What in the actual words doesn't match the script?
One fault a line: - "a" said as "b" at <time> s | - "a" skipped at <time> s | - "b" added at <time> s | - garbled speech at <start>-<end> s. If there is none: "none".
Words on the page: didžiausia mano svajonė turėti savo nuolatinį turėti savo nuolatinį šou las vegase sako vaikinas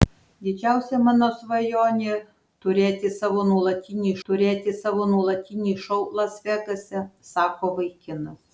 none